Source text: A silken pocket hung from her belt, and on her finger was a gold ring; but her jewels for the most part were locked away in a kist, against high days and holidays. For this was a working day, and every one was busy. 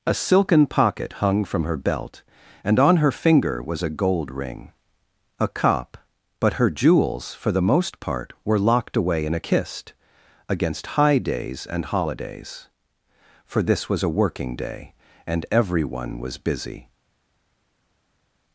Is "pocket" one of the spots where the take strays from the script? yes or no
no